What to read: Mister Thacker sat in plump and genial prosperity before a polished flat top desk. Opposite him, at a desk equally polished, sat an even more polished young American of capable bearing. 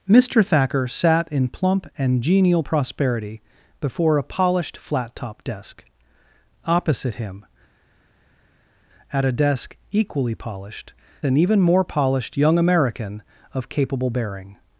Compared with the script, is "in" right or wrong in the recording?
right